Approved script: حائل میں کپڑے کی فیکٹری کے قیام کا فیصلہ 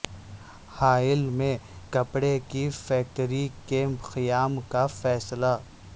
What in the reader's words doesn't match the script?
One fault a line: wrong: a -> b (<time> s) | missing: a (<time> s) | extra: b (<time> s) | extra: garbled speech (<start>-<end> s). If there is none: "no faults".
no faults